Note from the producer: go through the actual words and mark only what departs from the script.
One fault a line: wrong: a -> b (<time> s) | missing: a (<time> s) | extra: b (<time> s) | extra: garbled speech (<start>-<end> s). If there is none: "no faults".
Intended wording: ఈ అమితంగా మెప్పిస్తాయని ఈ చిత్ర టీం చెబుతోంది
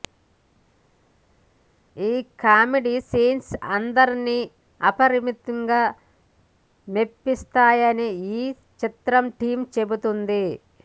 extra: కామెడీ సీన్స్ అందరినీ (2.4 s)